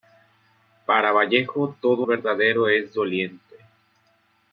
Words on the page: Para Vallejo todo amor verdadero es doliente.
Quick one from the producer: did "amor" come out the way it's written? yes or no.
no